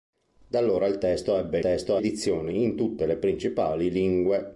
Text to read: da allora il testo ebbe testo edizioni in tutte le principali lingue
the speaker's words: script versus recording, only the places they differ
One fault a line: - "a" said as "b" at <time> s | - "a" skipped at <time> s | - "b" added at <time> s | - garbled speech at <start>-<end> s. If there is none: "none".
none